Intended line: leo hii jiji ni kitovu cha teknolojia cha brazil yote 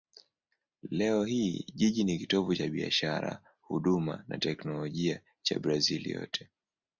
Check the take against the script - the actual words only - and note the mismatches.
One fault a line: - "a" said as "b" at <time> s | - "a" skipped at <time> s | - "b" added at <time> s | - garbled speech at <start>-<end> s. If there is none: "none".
- "biashara huduma na" added at 2.7 s